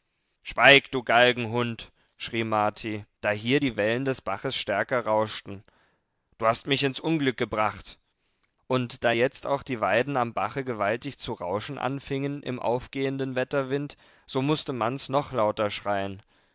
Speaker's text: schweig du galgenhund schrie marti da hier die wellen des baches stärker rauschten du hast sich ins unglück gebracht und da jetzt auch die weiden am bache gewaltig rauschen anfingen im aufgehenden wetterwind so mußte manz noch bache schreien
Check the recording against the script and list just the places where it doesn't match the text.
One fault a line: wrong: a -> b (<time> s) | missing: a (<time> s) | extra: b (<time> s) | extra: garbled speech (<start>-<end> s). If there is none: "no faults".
wrong: sich -> mich (6.7 s)
extra: zu (11.2 s)
wrong: bache -> lauter (15.3 s)